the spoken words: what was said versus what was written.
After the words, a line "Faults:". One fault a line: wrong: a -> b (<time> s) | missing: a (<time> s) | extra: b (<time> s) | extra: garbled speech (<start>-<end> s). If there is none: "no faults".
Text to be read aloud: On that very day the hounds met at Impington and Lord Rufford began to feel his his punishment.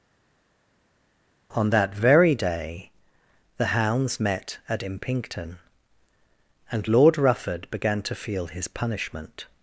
On that very day the hounds met at Impington and Lord Rufford began to feel his punishment.
Faults:
missing: his (8.7 s)